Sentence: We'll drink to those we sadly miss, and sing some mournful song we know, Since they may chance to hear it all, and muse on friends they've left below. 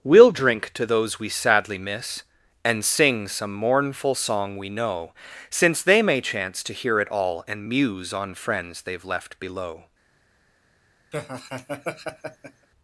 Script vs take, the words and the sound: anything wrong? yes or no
yes